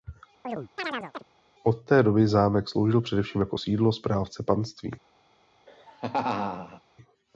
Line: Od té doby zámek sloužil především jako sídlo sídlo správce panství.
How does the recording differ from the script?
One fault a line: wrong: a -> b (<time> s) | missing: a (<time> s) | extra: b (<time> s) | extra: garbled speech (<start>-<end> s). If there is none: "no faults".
missing: sídlo (3.9 s)